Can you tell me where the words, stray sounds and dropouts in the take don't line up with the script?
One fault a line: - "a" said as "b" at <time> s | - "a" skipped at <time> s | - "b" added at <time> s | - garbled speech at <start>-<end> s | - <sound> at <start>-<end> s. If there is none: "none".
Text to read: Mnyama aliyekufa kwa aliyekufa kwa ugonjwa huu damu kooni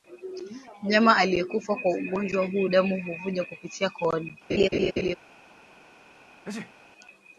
- "aliyekufa kwa" skipped at 1.9 s
- "huvuja kupitia" added at 3.0 s
- laugh at 4.5-5.2 s
- sneeze at 6.4-6.7 s